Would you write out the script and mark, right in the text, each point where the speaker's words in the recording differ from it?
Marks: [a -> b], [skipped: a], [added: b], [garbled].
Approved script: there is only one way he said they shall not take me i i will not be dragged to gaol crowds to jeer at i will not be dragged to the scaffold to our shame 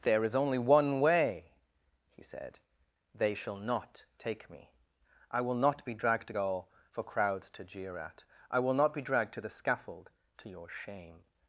there is only one way he said they shall not take me i [skipped: i] will not be dragged to gaol [added: for] crowds to jeer at i will not be dragged to the scaffold to [our -> your] shame